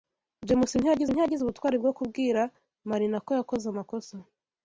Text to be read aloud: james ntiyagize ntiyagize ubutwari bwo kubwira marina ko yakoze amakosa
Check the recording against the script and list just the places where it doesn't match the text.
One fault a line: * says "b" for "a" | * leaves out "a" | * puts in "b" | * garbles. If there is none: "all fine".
all fine